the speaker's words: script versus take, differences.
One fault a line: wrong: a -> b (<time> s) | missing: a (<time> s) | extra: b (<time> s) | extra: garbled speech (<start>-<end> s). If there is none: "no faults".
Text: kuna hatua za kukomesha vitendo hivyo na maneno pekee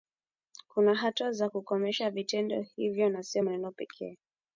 extra: sio (3.2 s)